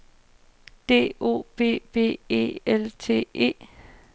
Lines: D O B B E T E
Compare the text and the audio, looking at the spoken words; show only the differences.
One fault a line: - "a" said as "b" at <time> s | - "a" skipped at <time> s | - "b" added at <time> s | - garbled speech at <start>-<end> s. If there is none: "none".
- "L" added at 2.6 s